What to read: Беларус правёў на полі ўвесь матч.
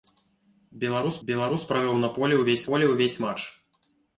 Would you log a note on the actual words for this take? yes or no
yes